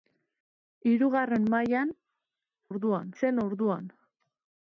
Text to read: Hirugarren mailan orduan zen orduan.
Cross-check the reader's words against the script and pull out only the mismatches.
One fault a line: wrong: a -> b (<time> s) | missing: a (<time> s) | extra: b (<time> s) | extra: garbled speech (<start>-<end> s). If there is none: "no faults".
no faults